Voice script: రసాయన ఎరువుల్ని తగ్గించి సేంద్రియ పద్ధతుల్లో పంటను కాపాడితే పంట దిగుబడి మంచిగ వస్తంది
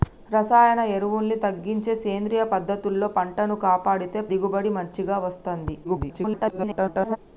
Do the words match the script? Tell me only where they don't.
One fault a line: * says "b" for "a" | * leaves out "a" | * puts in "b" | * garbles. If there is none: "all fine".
* leaves out "పంట"
* garbles